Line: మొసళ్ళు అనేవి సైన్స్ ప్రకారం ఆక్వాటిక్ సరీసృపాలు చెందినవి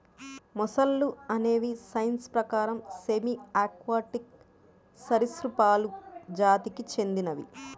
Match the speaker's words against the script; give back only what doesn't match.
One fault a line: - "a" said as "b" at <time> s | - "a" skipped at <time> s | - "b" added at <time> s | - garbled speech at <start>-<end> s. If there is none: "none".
- "సెమీ" added at 3.0 s
- "జాతికి" added at 6.4 s